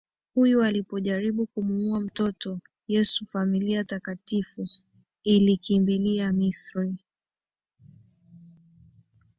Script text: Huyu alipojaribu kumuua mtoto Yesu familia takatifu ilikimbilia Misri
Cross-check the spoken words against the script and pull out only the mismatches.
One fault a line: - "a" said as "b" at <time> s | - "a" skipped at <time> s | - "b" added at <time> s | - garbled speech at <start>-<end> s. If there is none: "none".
none